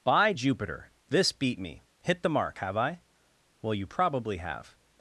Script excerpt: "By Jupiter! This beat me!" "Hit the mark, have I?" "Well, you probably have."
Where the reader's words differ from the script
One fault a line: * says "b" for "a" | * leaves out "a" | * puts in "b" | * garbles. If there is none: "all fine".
all fine